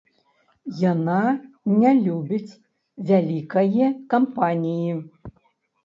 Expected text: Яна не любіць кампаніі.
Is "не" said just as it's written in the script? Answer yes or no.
yes